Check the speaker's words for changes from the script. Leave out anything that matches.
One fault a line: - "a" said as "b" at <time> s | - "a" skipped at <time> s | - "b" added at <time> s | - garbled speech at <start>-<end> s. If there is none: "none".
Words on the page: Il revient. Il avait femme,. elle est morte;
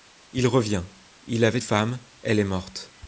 none